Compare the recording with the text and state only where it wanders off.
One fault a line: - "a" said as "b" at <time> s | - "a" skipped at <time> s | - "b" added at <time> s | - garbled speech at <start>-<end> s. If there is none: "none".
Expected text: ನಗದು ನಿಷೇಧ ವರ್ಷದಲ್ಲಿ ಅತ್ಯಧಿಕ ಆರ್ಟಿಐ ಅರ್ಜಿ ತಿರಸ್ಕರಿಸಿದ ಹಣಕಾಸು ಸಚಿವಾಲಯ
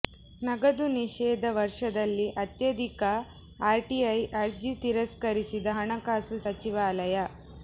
none